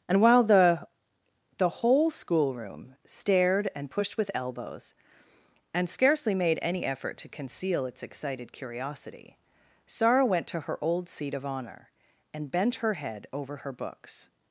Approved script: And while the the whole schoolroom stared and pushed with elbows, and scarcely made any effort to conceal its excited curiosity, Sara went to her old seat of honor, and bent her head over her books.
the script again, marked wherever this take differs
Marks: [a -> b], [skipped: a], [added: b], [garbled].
And while the the whole schoolroom stared and pushed with elbows, and scarcely made any effort to conceal its excited curiosity, Sara went to her old seat of honor, and bent her head over her books.